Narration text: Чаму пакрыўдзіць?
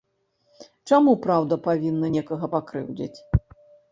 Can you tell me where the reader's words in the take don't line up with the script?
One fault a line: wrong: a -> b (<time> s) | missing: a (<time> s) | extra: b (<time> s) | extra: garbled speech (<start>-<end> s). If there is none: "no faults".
extra: праўда павінна некага (1.2 s)